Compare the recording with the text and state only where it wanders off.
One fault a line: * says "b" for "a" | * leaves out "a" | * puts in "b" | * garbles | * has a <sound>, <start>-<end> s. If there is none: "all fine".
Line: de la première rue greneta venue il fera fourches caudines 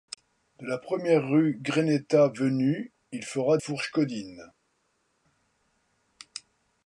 all fine